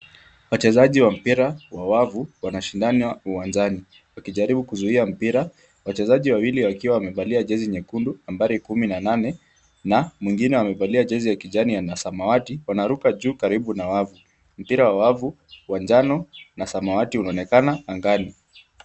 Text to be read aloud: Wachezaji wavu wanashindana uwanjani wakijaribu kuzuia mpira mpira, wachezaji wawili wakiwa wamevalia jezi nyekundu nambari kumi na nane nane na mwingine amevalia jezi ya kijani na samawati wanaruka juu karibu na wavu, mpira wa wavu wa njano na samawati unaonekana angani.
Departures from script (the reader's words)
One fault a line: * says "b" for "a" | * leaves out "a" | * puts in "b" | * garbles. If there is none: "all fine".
* puts in "wa mpira wa"
* leaves out "mpira"
* leaves out "nane"